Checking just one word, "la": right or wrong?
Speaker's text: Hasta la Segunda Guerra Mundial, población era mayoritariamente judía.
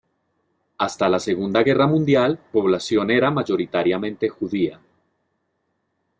right